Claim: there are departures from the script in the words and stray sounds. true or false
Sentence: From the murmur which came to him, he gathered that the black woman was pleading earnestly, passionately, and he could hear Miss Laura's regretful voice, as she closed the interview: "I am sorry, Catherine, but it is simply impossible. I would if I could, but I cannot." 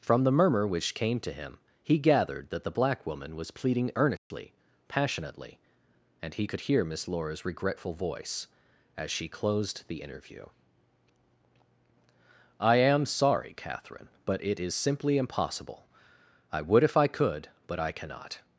true